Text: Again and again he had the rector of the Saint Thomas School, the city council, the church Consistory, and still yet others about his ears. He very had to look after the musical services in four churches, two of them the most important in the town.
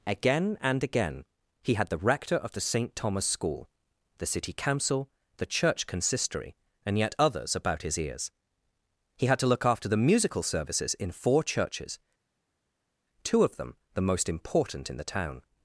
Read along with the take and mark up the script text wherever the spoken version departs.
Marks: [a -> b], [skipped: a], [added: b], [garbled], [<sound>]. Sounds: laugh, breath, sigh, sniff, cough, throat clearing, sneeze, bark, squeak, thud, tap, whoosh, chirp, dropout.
Again and again he had the rector of the Saint Thomas School, the city council, the church Consistory, and [skipped: still] yet others about his ears. He [skipped: very] had to look after the musical services in four churches, two of them the most important in the town.